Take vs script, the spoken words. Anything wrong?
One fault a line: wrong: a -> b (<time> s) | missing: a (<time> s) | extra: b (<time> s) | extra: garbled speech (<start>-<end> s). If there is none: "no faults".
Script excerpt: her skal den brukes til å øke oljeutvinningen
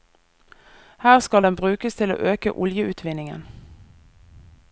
no faults